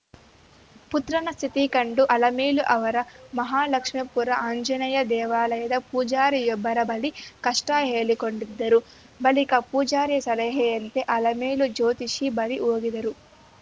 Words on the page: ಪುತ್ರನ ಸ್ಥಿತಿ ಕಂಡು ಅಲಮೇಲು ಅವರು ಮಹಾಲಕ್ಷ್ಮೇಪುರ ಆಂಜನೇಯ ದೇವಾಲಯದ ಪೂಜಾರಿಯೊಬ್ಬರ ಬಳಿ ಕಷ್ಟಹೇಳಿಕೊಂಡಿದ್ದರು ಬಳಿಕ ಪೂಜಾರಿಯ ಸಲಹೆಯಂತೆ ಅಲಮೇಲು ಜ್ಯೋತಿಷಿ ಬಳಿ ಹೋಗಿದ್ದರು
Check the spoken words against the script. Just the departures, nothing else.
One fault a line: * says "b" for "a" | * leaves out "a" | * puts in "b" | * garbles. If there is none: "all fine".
all fine